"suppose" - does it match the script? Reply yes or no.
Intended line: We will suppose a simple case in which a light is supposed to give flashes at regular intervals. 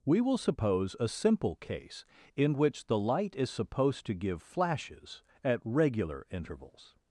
yes